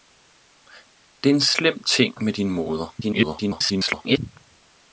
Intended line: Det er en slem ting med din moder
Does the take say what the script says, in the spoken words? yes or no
no